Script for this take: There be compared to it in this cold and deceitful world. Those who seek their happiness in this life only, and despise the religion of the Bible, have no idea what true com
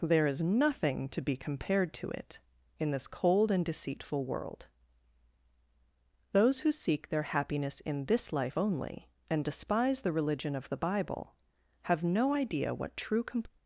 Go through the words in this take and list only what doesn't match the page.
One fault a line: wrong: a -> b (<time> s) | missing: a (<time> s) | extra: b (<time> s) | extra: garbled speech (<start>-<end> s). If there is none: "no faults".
extra: is nothing to (0.2 s)